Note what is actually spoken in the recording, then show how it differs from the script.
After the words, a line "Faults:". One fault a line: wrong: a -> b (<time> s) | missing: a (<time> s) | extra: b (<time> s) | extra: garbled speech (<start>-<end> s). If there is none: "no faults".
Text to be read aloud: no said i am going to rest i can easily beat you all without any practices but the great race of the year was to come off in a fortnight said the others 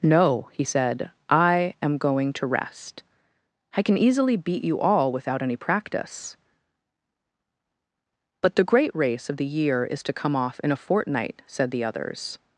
no he said i am going to rest i can easily beat you all without any practice but the great race of the year is to come off in a fortnight said the others
Faults:
extra: he (0.5 s)
wrong: practices -> practice (5.6 s)
wrong: was -> is (9.8 s)